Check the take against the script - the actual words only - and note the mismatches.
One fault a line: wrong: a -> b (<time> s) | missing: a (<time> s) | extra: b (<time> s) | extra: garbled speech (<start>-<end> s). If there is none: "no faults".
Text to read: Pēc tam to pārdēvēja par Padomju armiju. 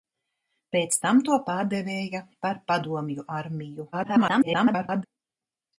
extra: garbled speech (3.9-5.0 s)